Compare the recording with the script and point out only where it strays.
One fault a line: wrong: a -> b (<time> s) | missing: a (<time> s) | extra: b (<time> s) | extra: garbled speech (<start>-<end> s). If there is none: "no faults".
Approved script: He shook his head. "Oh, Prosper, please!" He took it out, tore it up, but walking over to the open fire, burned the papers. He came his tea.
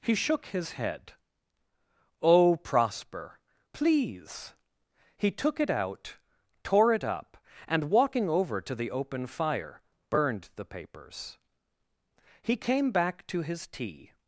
wrong: but -> and (7.7 s)
extra: back to (12.9 s)